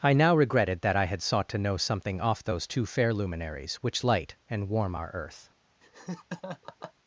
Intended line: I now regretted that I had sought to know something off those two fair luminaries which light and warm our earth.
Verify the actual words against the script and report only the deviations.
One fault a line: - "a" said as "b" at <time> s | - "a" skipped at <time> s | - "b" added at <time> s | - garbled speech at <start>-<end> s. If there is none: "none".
none